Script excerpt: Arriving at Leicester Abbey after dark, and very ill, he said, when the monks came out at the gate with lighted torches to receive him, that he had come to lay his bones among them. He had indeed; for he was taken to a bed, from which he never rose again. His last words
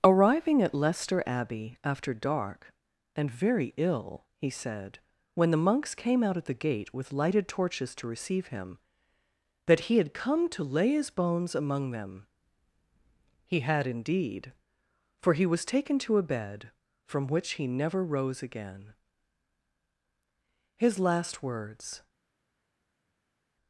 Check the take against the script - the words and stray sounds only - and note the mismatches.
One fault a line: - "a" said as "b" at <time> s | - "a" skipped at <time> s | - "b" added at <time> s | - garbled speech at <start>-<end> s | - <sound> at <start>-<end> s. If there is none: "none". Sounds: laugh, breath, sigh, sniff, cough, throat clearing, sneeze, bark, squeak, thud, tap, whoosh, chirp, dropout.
none